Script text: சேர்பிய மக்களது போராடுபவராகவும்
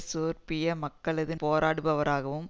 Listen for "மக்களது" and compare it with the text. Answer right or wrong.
right